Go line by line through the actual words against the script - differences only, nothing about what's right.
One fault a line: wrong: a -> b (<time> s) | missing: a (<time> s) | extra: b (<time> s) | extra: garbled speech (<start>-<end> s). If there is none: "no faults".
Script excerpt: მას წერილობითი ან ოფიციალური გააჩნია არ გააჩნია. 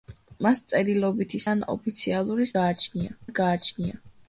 no faults